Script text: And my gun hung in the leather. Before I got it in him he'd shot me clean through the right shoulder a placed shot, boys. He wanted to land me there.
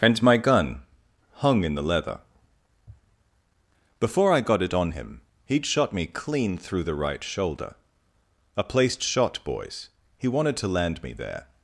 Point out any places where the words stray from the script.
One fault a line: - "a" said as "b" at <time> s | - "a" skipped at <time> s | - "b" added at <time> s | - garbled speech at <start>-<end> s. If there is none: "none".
- "in" said as "on" at 4.7 s